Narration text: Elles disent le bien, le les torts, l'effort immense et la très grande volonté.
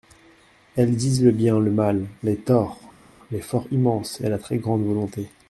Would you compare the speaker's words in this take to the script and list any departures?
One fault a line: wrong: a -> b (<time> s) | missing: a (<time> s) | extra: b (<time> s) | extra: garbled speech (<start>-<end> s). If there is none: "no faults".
extra: mal (1.7 s)